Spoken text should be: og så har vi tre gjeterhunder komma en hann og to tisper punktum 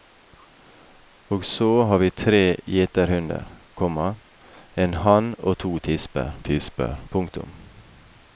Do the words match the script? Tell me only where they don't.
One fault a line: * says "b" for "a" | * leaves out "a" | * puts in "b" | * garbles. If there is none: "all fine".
* puts in "tisper"